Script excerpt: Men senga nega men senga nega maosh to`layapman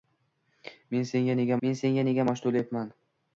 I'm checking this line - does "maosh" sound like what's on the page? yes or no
yes